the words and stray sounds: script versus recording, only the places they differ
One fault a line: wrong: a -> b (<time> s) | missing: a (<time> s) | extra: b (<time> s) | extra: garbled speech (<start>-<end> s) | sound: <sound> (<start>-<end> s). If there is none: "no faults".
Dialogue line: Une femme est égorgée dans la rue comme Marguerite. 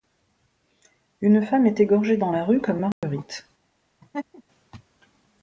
sound: dropout (2.9-3.0 s)
sound: laugh (4.0-4.4 s)